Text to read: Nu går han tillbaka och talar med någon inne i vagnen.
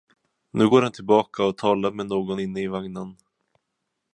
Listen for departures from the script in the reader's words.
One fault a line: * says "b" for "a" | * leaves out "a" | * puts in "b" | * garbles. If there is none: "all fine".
all fine